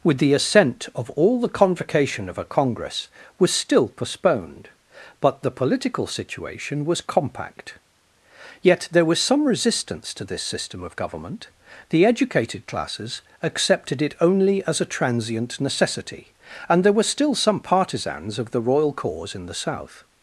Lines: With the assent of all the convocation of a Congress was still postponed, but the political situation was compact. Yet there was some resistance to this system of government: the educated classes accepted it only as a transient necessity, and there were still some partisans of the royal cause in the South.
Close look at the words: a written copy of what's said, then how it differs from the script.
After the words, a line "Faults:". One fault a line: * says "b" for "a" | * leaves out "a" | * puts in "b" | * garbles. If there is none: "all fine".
With the assent of all the convocation of a Congress was still postponed, but the political situation was compact. Yet there was some resistance to this system of government: the educated classes accepted it only as a transient necessity, and there were still some partisans of the royal cause in the South.
Faults:
all fine